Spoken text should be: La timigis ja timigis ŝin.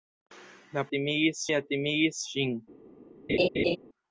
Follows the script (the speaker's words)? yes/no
yes